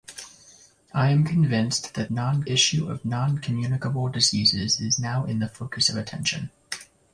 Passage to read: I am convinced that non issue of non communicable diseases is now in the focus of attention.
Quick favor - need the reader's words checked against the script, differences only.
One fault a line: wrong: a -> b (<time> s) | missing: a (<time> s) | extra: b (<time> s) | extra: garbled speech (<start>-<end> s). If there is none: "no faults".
no faults